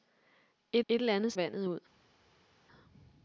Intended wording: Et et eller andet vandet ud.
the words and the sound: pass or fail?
pass